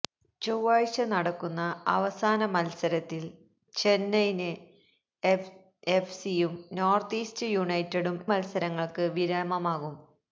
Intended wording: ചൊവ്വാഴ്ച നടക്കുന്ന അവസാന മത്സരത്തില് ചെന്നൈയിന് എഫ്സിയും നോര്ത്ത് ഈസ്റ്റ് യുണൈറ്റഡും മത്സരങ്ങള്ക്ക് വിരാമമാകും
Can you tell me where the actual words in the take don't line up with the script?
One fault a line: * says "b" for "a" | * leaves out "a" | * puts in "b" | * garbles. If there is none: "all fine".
all fine